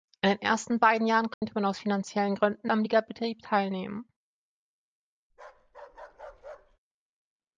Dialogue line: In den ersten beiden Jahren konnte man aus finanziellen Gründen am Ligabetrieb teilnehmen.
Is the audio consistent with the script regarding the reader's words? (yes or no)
yes